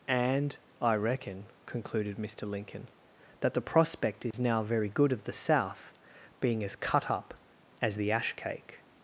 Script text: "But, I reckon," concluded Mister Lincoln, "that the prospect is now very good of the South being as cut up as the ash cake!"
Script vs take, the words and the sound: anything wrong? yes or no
yes